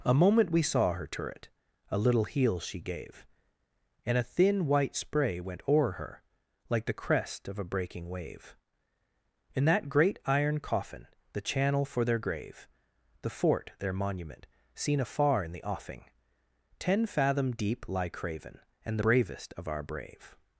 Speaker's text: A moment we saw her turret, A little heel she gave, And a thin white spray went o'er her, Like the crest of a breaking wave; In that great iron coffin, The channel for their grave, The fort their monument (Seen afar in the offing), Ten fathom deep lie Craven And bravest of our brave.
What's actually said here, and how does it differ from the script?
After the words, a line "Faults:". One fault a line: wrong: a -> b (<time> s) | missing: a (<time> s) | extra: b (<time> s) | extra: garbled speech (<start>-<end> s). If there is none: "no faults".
A moment we saw her turret, A little heel she gave, And a thin white spray went o'er her, Like the crest of a breaking wave; In that great iron coffin, The channel for their grave, The fort their monument (Seen afar in the offing), Ten fathom deep lie Craven And bravest of our brave.
Faults:
no faults